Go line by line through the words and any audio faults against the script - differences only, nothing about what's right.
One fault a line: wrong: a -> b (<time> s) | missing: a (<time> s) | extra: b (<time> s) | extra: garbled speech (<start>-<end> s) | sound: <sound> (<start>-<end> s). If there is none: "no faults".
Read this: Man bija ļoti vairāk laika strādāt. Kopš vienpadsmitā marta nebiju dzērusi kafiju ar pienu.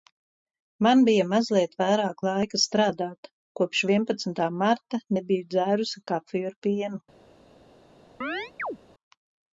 wrong: ļoti -> mazliet (1.3 s)
sound: chirp (8.2-8.8 s)